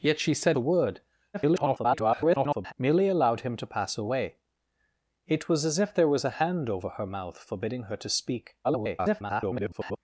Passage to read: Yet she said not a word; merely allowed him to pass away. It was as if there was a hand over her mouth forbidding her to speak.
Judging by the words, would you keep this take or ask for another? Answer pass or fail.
fail